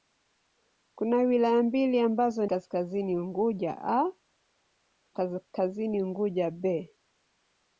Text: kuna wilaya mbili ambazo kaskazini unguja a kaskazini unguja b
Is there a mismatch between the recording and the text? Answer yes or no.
no